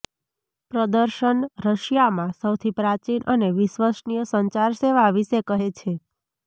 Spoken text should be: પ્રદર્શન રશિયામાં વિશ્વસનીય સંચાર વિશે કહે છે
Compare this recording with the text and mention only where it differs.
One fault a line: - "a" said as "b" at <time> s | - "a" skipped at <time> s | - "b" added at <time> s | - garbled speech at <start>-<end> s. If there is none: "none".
- "સૌથી પ્રાચીન અને" added at 2.4 s
- "સેવા" added at 4.8 s